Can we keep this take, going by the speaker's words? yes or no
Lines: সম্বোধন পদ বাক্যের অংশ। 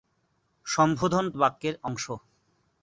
no